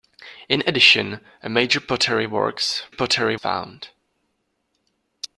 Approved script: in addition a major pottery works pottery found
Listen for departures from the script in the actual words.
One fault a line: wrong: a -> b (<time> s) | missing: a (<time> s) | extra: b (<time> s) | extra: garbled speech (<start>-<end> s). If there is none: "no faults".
no faults